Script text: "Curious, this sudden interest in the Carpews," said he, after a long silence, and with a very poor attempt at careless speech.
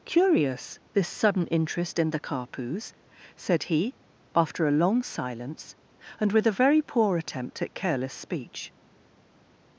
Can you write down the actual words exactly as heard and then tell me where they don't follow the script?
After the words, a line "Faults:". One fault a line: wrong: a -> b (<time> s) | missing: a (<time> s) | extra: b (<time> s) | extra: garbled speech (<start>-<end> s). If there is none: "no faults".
"Curious, this sudden interest in the Carpews," said he, after a long silence, and with a very poor attempt at careless speech.
Faults:
no faults